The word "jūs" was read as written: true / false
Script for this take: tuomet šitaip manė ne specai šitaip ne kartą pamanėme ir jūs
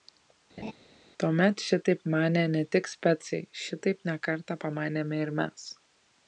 false